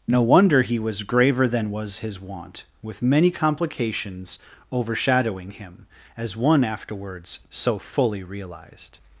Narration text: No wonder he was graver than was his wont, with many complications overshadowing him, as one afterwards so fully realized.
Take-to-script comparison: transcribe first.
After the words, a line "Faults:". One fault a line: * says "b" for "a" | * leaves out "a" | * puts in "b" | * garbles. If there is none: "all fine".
No wonder he was graver than was his wont, with many complications overshadowing him, as one afterwards so fully realized.
Faults:
all fine